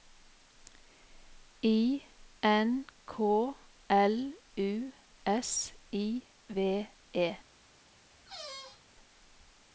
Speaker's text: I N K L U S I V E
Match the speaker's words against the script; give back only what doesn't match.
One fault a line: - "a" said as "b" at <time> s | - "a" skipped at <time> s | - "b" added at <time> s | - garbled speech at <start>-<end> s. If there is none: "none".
none